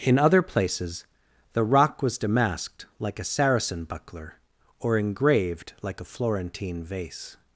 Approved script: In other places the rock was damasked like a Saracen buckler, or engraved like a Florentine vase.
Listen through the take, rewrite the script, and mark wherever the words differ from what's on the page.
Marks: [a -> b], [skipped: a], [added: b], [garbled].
In other places the rock was damasked like a Saracen buckler, or engraved like a Florentine vase.